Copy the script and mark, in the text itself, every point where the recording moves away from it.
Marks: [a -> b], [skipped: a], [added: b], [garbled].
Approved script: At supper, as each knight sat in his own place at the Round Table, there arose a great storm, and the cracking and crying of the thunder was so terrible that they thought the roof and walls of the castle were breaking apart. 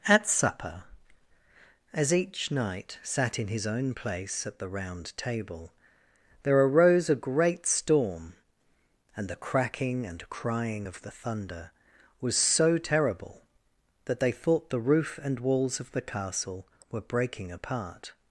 At supper, as each knight sat in his own place at the Round Table, there arose a great storm, and the cracking and crying of the thunder was so terrible that they thought the roof and walls of the castle were breaking apart.